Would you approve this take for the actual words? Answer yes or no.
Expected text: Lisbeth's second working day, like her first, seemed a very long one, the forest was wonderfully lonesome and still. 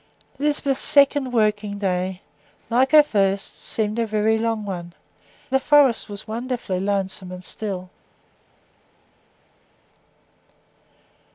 yes